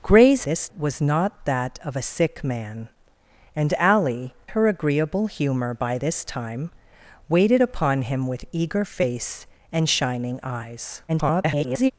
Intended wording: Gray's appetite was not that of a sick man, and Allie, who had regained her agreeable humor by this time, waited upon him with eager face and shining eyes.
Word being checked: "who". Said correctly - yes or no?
no